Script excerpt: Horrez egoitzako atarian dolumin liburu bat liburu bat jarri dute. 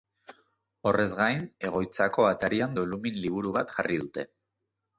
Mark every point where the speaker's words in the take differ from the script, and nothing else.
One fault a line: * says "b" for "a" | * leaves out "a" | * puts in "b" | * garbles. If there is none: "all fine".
* puts in "gain"
* leaves out "liburu bat"